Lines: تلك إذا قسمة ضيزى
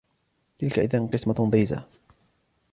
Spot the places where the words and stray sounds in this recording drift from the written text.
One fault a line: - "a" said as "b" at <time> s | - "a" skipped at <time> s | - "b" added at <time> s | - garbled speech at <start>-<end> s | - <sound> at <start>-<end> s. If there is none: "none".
none